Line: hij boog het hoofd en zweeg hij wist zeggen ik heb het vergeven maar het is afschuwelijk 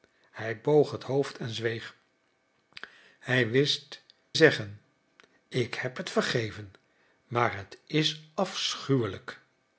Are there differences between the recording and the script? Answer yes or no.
no